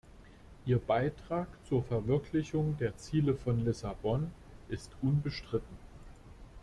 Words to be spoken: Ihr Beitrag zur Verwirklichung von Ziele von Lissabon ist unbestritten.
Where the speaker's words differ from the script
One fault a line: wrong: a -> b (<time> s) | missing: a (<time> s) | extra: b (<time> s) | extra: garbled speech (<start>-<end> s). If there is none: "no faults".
wrong: von -> der (2.8 s)